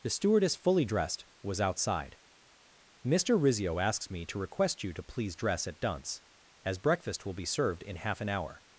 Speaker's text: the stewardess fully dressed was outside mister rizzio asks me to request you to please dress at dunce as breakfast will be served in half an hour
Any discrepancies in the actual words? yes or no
no